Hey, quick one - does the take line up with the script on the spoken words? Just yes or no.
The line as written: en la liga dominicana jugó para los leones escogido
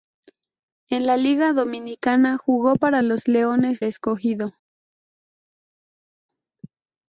yes